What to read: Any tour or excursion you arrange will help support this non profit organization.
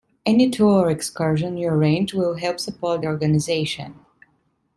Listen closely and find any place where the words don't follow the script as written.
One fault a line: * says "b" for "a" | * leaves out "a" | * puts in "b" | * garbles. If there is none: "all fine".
* leaves out "this non profit"